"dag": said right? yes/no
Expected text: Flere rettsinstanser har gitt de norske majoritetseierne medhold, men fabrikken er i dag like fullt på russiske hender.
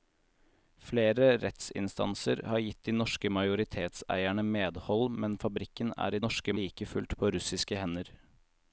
no